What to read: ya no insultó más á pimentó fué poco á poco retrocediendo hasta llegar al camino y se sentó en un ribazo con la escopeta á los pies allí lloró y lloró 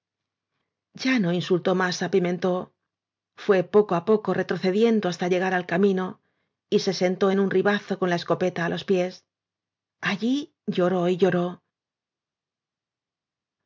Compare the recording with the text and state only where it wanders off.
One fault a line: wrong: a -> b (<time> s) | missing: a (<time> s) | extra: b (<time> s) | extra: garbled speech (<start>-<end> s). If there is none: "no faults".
no faults